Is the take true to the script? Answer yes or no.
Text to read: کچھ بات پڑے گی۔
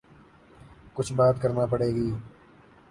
no